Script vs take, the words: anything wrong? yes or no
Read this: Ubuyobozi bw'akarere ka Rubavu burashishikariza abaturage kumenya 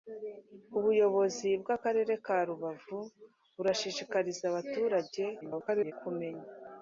yes